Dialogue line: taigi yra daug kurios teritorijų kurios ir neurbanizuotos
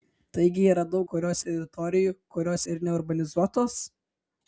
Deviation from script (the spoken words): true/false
false